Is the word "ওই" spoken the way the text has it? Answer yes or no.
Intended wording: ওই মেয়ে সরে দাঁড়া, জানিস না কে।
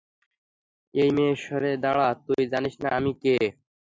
no